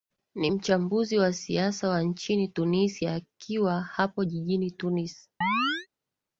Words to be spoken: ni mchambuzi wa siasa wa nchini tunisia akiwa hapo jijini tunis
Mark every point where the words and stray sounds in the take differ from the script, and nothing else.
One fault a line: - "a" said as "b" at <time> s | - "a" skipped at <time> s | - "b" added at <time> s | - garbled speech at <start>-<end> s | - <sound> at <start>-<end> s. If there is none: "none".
- chirp at 5.4-5.9 s